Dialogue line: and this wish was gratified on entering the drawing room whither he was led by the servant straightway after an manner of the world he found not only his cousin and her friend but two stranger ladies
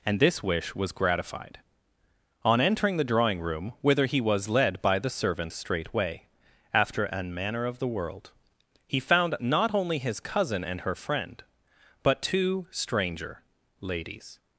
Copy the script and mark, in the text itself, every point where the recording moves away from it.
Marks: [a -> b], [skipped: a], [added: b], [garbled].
and this wish was gratified on entering the drawing room whither he was led by the servant straightway after an manner of the world he found not only his cousin and her friend but two stranger ladies